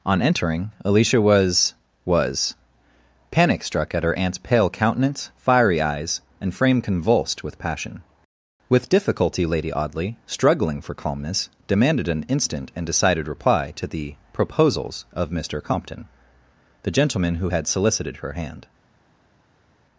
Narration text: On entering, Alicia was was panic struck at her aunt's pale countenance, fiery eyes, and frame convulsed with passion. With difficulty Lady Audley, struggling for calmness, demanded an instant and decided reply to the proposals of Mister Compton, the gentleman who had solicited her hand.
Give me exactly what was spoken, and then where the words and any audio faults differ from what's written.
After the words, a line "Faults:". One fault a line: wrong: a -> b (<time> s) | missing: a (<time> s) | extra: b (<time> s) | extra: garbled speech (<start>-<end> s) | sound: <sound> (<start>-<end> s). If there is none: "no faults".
On entering, Alicia was was panic struck at her aunt's pale countenance, fiery eyes, and frame convulsed with passion. With difficulty Lady Audley, struggling for calmness, demanded an instant and decided reply to the proposals of Mister Compton, the gentleman who had solicited her hand.
Faults:
no faults